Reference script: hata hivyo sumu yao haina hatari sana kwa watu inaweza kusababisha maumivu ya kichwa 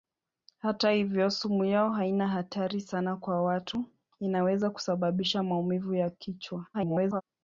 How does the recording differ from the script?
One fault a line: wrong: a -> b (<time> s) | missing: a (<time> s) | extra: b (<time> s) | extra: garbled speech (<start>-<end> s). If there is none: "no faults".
extra: garbled speech (6.7-7.2 s)